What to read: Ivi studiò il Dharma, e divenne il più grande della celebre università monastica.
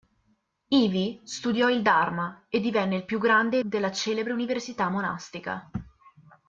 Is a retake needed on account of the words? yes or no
no